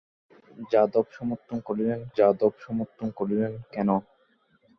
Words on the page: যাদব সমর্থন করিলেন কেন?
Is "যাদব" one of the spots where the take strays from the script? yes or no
no